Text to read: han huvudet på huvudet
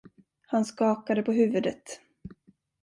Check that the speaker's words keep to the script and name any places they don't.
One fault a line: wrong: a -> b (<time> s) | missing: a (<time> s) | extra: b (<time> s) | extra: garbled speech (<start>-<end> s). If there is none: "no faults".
wrong: huvudet -> skakade (0.6 s)